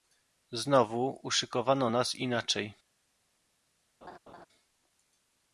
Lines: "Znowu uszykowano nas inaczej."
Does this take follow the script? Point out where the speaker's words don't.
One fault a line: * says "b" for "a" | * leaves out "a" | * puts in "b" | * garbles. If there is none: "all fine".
all fine